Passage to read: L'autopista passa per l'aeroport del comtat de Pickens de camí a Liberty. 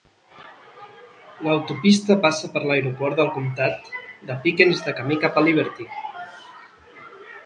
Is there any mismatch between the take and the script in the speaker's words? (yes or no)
yes